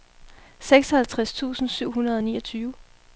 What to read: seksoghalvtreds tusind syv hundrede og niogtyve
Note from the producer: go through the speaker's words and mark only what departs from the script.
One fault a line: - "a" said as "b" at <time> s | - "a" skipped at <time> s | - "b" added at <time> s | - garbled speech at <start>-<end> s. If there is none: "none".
none